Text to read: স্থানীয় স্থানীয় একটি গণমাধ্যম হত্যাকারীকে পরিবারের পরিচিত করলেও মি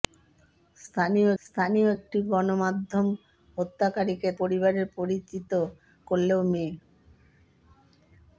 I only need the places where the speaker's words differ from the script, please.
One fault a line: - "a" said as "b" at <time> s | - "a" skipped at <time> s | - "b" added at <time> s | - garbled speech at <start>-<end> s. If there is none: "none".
none